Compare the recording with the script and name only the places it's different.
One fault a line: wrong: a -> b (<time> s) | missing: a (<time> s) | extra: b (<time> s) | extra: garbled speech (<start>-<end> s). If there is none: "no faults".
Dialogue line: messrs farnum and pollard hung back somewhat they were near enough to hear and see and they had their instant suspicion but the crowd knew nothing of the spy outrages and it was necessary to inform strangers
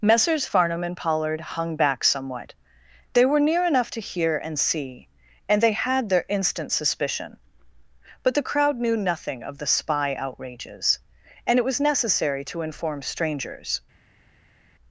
no faults